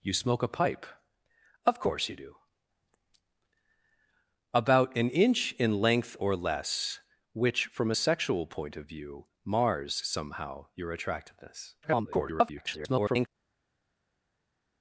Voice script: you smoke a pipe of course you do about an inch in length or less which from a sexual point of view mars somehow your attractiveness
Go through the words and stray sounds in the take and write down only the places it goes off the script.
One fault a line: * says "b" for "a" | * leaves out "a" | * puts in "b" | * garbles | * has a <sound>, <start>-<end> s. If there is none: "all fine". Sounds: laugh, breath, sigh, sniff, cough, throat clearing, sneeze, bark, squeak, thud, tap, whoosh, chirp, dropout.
* garbles